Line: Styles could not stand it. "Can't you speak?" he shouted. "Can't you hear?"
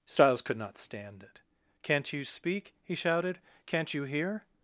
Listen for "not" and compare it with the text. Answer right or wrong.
right